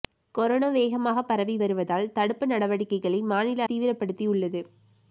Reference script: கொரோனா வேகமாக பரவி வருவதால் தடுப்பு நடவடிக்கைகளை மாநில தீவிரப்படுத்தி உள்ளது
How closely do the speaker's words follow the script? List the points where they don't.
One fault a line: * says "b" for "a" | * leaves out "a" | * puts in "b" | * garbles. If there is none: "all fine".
all fine